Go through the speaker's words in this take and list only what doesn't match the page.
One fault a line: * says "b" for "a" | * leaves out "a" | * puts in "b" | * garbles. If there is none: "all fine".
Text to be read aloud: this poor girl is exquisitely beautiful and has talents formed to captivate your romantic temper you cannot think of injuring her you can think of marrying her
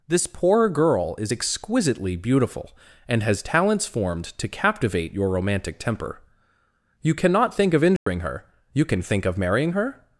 all fine